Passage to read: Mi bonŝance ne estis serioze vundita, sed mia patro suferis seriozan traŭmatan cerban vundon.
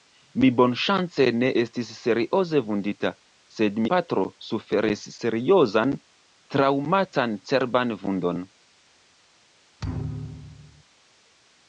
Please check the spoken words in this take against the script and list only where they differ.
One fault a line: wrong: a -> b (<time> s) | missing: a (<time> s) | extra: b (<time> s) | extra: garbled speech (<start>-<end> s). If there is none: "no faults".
missing: mia (3.8 s)